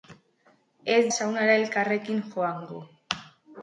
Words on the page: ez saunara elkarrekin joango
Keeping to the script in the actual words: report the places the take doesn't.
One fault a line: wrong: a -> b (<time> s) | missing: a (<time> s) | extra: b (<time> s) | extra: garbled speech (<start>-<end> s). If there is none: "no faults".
no faults